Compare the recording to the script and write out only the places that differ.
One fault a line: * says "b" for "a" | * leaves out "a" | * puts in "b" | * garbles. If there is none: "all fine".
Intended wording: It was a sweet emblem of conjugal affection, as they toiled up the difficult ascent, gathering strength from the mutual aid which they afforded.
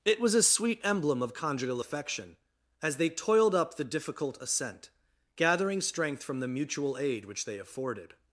all fine